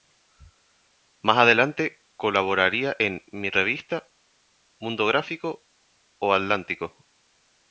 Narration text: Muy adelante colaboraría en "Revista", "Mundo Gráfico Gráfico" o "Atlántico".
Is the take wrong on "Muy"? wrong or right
wrong